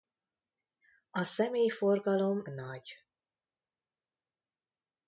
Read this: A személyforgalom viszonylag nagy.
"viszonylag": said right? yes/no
no